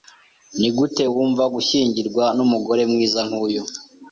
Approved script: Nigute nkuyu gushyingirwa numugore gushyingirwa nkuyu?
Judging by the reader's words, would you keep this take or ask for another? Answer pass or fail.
fail